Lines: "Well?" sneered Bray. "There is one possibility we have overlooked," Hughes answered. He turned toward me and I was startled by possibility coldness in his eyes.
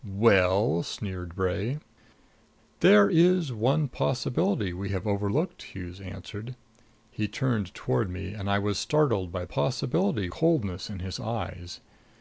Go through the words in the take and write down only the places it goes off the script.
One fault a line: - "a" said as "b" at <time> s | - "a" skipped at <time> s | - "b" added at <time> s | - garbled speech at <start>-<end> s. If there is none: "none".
none